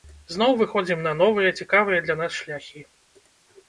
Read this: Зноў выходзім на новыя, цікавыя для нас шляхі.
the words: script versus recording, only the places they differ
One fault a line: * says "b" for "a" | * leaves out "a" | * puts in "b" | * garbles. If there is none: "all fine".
all fine